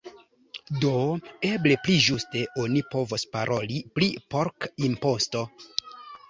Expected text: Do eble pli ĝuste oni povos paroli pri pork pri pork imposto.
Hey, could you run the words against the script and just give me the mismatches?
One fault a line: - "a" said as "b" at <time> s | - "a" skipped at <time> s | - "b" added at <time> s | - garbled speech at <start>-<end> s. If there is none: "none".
- "pri pork" skipped at 4.7 s